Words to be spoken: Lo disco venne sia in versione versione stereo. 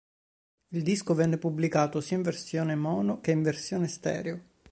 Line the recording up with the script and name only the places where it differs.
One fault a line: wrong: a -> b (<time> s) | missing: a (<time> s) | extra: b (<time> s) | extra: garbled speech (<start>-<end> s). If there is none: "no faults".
wrong: Lo -> Il (0.7 s)
extra: pubblicato (1.4 s)
extra: mono che in (2.7 s)